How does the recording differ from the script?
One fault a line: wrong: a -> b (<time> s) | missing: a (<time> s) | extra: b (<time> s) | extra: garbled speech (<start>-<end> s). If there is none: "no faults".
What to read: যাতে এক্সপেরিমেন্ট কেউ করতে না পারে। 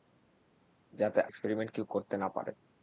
no faults